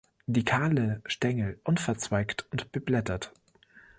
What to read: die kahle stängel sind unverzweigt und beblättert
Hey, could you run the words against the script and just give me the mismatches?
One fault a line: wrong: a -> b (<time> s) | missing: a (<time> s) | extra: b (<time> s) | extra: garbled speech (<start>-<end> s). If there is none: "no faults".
missing: sind (1.6 s)